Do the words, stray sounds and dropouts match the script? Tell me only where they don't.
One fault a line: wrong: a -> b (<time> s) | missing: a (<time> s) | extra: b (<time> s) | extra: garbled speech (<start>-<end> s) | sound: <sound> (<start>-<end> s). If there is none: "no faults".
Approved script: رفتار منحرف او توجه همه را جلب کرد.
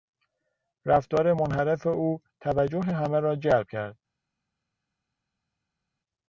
no faults